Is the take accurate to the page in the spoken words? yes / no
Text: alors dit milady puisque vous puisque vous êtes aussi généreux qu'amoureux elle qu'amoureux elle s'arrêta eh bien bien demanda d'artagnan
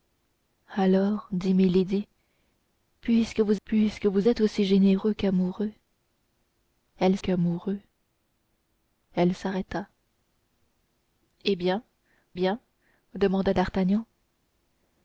yes